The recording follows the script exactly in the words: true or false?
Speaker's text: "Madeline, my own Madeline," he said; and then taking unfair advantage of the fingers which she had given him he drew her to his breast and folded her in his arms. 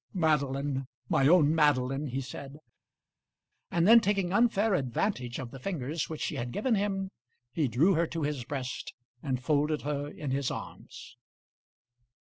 true